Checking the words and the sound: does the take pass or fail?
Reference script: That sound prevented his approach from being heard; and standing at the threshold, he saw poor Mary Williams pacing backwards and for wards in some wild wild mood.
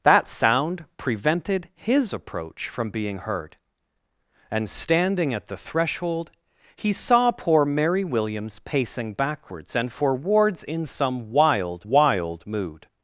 pass